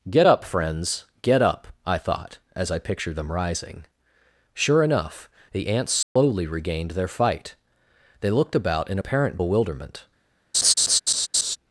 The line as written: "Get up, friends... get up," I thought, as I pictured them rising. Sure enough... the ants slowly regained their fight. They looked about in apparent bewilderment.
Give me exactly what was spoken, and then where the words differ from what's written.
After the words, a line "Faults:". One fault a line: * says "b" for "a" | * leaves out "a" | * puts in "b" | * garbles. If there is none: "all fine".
"Get up, friends... get up," I thought, as I pictured them rising. Sure enough... the ants slowly regained their fight. They looked about in apparent bewilderment.
Faults:
all fine